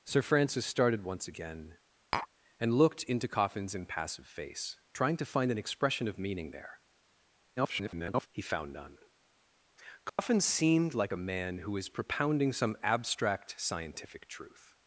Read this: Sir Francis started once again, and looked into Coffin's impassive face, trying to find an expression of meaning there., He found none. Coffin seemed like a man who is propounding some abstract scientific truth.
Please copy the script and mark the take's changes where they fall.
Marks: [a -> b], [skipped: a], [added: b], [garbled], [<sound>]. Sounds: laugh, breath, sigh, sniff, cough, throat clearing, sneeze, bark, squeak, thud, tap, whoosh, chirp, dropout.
Sir Francis started once again, [tap] and looked into Coffin's impassive face, trying to find an expression of meaning there., [garbled] He found none. Coffin [dropout] seemed like a man who is propounding some abstract scientific truth.